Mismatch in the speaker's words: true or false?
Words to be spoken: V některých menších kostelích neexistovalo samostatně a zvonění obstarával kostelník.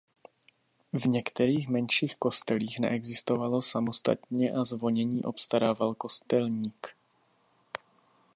false